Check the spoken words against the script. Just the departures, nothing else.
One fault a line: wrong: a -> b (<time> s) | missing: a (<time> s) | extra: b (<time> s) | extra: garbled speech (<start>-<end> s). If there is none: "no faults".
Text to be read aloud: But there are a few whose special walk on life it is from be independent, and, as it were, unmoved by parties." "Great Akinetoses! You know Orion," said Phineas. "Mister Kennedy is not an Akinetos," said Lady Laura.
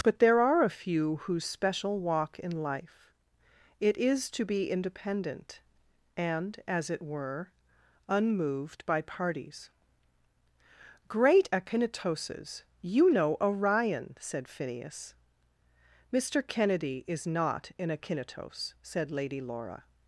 wrong: on -> in (2.4 s)
wrong: from -> to (4.3 s)